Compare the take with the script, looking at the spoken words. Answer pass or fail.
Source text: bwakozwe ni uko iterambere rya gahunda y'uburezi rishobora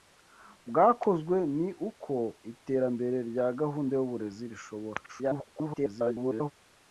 fail